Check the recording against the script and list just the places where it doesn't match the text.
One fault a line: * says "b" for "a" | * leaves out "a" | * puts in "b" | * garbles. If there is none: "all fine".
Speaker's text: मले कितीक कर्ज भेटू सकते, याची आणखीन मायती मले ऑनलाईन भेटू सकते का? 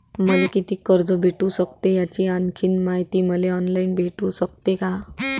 all fine